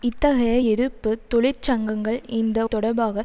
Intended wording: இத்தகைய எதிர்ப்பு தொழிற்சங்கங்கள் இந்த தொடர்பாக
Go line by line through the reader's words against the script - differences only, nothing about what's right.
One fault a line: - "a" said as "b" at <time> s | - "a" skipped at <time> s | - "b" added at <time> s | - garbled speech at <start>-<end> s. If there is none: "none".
none